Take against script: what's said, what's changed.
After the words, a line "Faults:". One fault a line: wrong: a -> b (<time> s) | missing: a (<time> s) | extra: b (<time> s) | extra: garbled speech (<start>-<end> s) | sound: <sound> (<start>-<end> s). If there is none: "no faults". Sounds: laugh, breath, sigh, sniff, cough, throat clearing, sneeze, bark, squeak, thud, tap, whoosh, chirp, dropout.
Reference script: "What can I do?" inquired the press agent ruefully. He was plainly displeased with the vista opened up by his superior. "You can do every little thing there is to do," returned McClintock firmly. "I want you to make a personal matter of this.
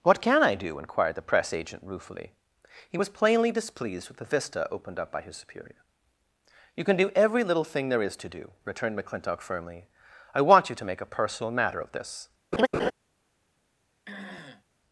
"What can I do?" inquired the press agent ruefully. He was plainly displeased with the vista opened up by his superior. "You can do every little thing there is to do," returned McClintock firmly. "I want you to make a personal matter of this.
Faults:
sound: laugh (12.5-12.9 s)
sound: throat clearing (14.1-14.6 s)